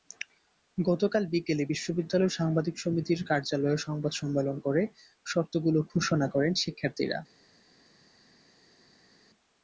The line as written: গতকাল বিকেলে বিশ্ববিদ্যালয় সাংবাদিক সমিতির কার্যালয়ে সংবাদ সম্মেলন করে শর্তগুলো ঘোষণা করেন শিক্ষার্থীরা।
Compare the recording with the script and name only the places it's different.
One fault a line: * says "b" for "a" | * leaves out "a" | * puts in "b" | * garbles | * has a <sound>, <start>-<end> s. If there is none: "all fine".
all fine